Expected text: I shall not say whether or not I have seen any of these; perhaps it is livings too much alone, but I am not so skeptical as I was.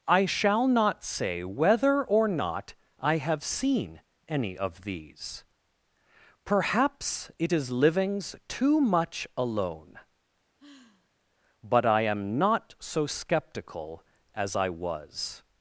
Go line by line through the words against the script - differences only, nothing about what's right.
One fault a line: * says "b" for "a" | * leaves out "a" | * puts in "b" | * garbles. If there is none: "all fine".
all fine